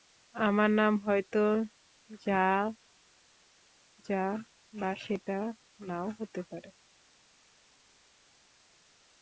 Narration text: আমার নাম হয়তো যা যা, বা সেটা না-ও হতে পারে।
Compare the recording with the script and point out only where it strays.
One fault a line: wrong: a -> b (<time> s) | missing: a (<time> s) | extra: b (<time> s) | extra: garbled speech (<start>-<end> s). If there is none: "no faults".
no faults